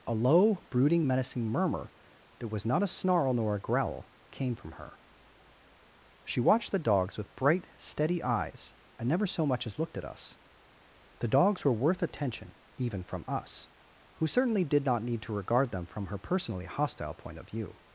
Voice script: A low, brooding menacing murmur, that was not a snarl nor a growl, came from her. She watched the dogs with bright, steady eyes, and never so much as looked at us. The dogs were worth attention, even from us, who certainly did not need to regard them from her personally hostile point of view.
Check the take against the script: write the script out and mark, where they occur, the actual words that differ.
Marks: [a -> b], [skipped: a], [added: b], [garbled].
A low, brooding menacing murmur, that was not a snarl nor a growl, came from her. She watched the dogs with bright, steady eyes, and never so much as looked at us. The dogs were worth attention, even from us, who certainly did not need to regard them from her personally hostile point of view.